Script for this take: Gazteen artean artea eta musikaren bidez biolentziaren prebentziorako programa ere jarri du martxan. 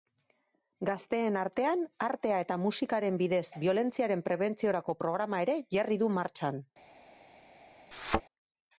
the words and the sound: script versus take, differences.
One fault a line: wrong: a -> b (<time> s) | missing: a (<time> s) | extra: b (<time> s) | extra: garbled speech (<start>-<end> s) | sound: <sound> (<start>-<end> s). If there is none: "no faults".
sound: thud (7.9-8.2 s)